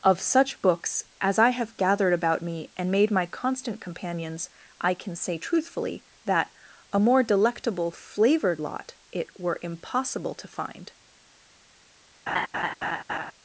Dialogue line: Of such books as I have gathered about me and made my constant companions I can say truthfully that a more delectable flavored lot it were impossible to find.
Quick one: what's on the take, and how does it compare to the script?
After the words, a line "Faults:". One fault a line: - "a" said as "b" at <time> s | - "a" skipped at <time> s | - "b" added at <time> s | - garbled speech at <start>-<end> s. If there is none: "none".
Of such books as I have gathered about me and made my constant companions I can say truthfully that a more delectable flavored lot it were impossible to find.
Faults:
none